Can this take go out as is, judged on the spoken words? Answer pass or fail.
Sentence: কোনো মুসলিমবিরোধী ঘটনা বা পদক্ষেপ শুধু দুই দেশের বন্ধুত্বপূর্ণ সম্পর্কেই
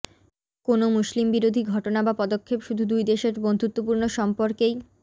pass